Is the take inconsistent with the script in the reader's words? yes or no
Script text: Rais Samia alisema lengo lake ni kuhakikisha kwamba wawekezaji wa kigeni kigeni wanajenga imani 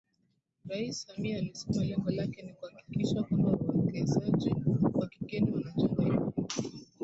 yes